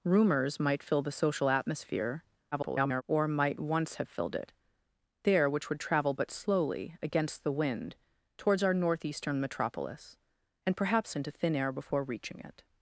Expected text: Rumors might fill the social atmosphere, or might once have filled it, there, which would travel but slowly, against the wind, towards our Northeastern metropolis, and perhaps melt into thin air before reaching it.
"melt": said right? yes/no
no